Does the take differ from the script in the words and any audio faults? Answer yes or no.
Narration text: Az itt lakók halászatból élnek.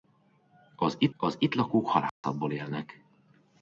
yes